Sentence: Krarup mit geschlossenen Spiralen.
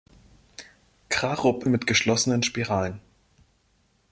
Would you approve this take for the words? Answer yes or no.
yes